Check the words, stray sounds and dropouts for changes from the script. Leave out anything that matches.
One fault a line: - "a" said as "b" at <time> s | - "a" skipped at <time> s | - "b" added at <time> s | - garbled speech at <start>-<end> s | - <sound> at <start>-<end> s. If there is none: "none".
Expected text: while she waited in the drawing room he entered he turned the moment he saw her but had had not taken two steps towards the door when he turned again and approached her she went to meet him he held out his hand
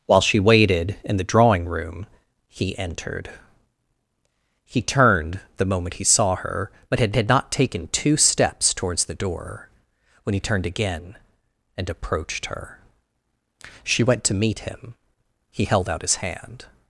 none